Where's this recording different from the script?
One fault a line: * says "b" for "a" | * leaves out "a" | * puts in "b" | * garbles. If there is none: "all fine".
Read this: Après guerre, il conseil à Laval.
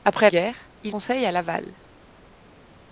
all fine